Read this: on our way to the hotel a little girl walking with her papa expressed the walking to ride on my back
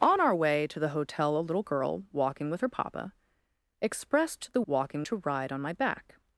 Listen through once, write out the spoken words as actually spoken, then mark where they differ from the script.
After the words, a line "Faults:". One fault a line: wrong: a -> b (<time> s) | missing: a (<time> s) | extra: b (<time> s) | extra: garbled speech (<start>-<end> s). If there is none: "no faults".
on our way to the hotel a little girl walking with her papa expressed the walking to ride on my back
Faults:
no faults